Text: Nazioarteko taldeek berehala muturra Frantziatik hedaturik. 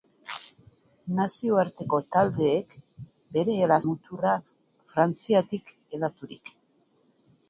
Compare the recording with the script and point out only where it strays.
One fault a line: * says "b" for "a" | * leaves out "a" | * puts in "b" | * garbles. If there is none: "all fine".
all fine